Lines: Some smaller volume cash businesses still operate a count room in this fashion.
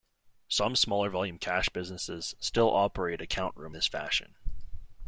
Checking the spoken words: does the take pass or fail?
fail